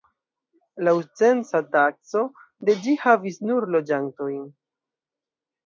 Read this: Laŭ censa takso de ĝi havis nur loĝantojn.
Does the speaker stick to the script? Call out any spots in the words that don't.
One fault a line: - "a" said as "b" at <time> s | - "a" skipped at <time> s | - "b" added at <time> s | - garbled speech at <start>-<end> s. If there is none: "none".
none